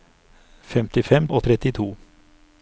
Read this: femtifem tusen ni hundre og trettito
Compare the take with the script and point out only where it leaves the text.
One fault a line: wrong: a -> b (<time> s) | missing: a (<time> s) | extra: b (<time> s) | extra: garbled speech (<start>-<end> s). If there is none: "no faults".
missing: tusen ni hundre (1.3 s)